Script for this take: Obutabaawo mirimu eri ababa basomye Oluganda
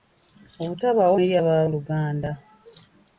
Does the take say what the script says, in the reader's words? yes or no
no